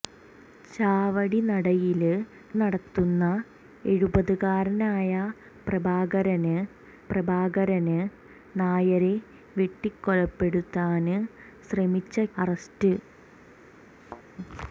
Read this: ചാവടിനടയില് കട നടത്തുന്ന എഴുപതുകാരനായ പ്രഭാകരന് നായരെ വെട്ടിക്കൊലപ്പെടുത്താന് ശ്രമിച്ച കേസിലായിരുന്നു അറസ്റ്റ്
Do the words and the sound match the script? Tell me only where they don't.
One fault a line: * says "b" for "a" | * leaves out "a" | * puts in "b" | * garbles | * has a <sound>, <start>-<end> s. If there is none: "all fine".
* leaves out "കട"
* puts in "പ്രഭാകരന്"
* leaves out "കേസിലായിരുന്നു"
* has a thud, 14.0-14.2 s